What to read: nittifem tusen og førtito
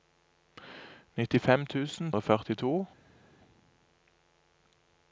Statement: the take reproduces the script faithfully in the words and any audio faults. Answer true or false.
true